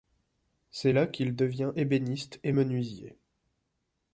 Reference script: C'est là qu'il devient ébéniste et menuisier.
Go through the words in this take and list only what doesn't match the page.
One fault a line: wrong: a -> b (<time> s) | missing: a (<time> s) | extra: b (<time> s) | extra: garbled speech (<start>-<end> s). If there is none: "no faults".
no faults